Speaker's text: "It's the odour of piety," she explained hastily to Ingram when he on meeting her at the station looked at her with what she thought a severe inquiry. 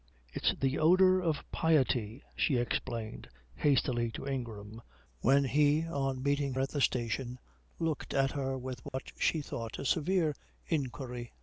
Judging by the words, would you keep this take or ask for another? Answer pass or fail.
fail